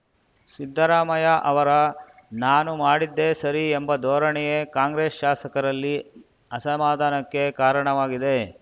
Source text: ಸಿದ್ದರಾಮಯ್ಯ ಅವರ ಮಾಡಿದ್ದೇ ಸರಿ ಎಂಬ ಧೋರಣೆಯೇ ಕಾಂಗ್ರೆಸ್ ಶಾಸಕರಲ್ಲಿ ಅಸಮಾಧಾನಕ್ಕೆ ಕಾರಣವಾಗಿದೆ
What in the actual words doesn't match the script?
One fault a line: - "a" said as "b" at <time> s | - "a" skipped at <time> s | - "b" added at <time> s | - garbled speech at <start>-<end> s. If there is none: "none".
- "ನಾನು" added at 2.4 s